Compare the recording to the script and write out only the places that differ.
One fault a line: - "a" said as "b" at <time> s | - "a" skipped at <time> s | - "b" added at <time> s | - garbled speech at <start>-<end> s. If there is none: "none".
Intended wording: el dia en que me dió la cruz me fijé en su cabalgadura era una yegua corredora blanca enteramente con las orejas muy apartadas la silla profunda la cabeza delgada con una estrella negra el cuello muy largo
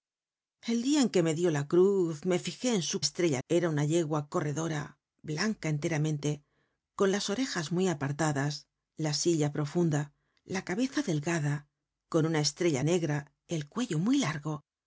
- "cabalgadura" said as "estrella" at 3.0 s